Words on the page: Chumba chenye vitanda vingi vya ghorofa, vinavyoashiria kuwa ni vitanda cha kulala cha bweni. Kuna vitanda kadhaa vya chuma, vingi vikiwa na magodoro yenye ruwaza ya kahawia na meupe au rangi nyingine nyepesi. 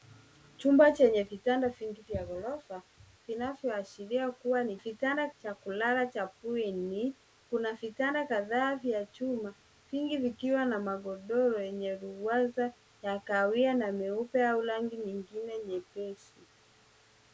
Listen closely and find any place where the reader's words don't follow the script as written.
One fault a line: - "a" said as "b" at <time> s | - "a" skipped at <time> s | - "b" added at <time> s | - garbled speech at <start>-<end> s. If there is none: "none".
none